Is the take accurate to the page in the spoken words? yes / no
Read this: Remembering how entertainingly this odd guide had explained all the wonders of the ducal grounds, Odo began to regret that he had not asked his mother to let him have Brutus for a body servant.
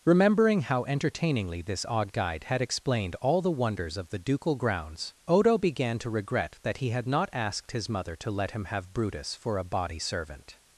yes